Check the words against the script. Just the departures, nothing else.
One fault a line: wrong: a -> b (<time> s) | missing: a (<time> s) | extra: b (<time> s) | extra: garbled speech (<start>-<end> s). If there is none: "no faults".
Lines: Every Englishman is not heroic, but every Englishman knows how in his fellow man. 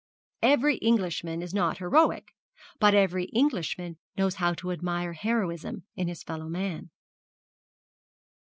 extra: to admire heroism (4.5 s)